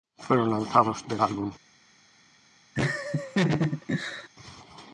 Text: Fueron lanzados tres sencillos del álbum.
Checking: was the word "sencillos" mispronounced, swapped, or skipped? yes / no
yes